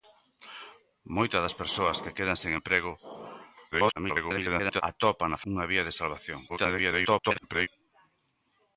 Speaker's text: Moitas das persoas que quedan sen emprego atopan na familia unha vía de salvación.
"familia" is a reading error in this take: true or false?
true